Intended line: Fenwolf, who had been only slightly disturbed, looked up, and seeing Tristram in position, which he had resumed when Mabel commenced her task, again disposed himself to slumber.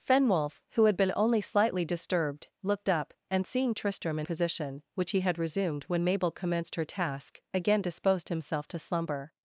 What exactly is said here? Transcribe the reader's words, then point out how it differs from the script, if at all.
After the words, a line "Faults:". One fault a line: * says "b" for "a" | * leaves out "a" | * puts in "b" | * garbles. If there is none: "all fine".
Fenwolf, who had been only slightly disturbed, looked up, and seeing Tristram in position, which he had resumed when Mabel commenced her task, again disposed himself to slumber.
Faults:
all fine